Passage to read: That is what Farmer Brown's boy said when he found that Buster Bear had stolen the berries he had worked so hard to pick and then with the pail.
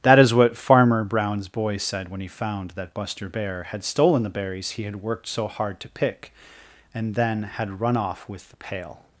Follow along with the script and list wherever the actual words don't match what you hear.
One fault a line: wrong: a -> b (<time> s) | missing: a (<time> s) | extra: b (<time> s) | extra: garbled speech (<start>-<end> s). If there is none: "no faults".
extra: had run off (7.4 s)